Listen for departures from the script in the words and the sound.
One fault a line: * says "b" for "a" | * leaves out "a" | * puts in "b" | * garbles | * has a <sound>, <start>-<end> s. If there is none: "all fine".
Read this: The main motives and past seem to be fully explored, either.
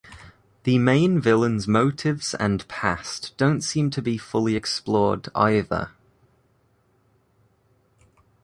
* puts in "villain's"
* puts in "don't"